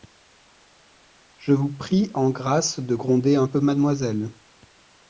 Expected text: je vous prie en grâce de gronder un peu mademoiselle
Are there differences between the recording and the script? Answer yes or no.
no